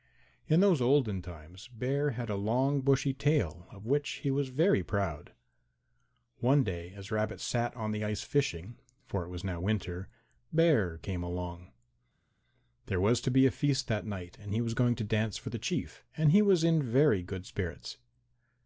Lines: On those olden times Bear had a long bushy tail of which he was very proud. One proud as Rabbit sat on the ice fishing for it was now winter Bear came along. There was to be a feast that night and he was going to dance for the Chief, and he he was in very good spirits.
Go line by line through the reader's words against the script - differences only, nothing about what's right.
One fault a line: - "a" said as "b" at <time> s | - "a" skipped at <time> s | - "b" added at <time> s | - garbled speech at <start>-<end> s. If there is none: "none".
- "On" said as "In" at 0.5 s
- "proud" said as "day" at 6.6 s
- "he" skipped at 16.4 s